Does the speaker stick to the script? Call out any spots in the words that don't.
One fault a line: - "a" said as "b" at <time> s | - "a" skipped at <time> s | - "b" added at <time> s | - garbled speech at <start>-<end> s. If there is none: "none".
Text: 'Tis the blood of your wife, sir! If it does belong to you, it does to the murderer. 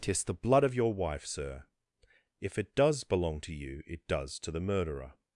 none